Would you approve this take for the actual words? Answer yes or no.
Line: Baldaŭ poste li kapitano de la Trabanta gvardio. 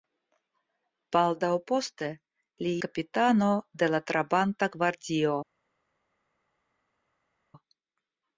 yes